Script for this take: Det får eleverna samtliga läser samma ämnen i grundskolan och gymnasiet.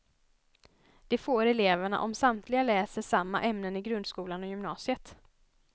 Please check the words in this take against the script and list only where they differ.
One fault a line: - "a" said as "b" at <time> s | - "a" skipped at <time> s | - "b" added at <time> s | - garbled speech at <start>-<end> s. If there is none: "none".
- "om" added at 2.0 s